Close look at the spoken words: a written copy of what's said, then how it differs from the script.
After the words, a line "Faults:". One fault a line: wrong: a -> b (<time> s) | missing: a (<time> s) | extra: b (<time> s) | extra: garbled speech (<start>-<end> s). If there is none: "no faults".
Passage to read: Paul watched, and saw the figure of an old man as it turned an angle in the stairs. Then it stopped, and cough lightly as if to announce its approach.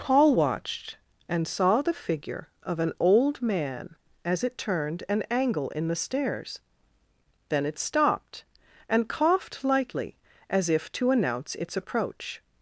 Paul watched, and saw the figure of an old man as it turned an angle in the stairs. Then it stopped, and coughed lightly as if to announce its approach.
Faults:
wrong: cough -> coughed (9.1 s)